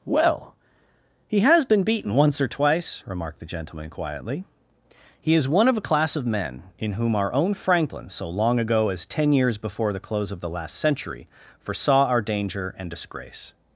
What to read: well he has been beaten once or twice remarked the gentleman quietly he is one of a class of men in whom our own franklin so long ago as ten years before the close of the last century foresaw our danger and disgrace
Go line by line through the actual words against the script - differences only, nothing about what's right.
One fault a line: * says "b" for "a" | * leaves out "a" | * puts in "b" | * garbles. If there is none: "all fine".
all fine